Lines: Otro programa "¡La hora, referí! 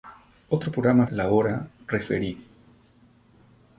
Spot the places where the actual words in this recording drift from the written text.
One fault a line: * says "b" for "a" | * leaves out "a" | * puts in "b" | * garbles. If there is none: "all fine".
all fine